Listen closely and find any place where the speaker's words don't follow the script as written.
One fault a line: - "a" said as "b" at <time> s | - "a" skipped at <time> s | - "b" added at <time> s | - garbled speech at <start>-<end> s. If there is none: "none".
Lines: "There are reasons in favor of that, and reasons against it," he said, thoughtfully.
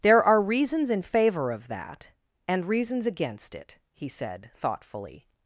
none